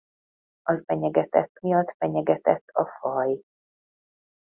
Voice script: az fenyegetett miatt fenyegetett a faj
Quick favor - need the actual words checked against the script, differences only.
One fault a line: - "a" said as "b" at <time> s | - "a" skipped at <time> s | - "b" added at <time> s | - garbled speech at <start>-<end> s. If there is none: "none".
none